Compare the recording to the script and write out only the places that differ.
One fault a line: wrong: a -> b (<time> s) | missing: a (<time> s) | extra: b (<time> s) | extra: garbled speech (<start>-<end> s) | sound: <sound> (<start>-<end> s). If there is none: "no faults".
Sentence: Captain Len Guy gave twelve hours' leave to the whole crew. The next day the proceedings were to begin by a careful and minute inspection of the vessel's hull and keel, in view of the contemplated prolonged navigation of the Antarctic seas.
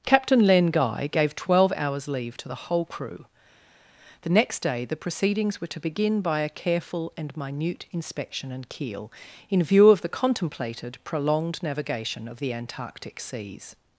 missing: of the vessel's hull (8.5 s)